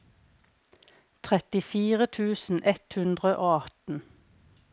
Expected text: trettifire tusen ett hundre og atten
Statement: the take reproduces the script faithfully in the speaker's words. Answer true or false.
true